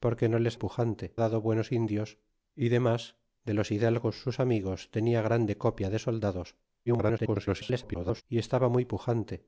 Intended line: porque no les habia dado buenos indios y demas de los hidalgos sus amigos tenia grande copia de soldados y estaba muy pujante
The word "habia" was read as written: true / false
false